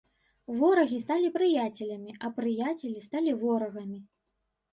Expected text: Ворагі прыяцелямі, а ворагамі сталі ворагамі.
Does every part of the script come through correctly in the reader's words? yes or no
no